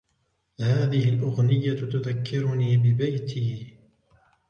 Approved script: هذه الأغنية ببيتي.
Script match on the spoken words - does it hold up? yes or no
no